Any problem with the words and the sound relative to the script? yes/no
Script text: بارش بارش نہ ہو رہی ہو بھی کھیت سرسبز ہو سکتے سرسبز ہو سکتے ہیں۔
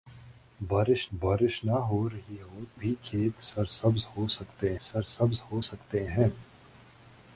no